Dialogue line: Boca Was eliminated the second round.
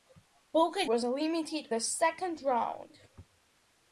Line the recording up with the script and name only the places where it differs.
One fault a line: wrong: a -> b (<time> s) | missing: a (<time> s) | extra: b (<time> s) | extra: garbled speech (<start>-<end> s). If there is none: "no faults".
no faults